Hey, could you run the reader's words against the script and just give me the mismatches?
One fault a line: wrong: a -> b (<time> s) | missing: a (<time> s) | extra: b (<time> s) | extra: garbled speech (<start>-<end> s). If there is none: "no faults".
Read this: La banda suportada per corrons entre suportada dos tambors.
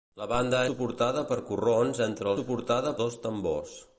no faults